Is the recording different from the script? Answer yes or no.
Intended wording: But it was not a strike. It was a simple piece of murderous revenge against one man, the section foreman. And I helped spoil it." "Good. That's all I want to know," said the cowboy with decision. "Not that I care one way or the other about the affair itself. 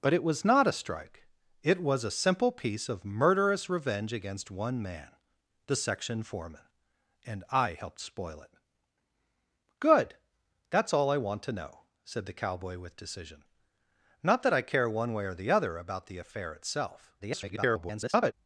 yes